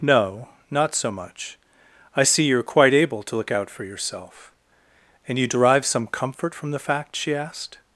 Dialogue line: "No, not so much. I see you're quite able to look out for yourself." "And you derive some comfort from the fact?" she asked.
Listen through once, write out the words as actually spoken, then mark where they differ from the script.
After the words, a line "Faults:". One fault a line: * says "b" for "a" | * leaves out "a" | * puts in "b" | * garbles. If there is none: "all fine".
"No, not so much. I see you're quite able to look out for yourself." "And you derive some comfort from the fact?" she asked.
Faults:
all fine